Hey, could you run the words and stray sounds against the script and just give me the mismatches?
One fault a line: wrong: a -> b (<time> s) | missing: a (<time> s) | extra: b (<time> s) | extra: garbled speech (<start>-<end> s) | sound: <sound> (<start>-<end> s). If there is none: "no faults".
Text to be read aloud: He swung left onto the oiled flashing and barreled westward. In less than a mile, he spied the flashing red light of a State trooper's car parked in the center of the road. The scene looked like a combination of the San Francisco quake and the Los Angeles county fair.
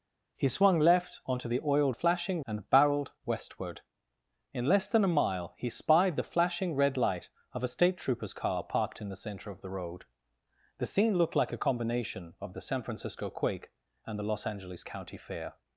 no faults